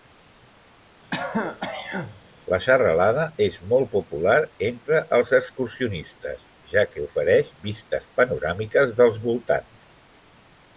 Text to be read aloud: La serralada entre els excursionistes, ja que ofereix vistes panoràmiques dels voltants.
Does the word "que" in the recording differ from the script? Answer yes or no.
no